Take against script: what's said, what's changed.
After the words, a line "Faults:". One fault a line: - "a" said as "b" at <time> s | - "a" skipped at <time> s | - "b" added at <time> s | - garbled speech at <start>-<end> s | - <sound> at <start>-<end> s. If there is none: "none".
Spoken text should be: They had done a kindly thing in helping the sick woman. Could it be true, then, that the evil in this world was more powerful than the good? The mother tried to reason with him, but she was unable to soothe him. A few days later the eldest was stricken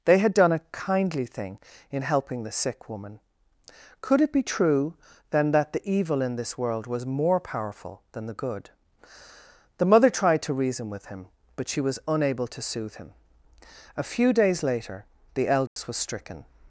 They had done a kindly thing in helping the sick woman. Could it be true, then, that the evil in this world was more powerful than the good? The mother tried to reason with him, but she was unable to soothe him. A few days later the eldest was stricken
Faults:
- dropout at 15.7-15.8 s